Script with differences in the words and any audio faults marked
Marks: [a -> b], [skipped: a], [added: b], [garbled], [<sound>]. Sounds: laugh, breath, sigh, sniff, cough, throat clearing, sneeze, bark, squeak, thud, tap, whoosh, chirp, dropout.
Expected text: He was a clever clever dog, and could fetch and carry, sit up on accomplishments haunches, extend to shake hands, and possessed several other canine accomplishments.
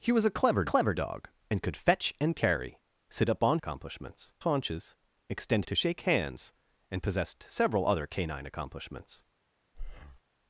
He was a clever clever dog, and could fetch and carry, sit up on accomplishments haunches, extend to shake hands, and possessed several other canine accomplishments. [breath]